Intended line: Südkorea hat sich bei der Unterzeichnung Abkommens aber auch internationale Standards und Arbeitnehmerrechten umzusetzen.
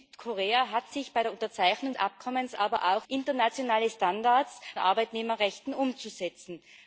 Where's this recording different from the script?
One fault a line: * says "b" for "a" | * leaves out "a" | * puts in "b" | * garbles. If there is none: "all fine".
all fine